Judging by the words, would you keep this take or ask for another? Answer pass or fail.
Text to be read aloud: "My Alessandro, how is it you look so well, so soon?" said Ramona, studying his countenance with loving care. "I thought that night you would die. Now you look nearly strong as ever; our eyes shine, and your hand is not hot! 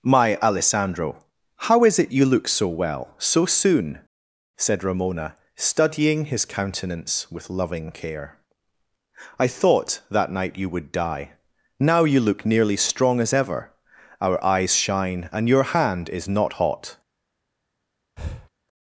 pass